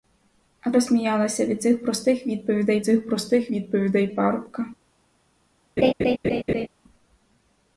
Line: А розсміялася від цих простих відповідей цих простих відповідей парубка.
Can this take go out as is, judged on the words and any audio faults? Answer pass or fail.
fail